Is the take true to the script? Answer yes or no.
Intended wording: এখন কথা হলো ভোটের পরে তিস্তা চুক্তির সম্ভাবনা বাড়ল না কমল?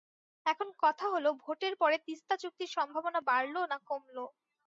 yes